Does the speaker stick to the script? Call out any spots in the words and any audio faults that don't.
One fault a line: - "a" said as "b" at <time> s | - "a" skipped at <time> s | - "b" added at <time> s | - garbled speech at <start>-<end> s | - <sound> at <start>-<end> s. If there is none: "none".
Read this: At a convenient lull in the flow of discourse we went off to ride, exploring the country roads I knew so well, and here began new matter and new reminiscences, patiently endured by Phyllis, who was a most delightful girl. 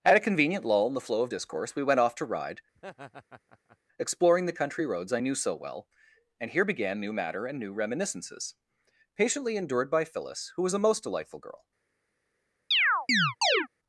- laugh at 2.8-3.8 s
- chirp at 12.7-13.7 s